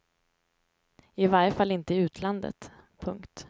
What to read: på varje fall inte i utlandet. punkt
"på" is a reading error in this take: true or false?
true